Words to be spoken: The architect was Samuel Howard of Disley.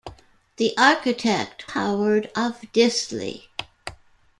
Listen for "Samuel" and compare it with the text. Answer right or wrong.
wrong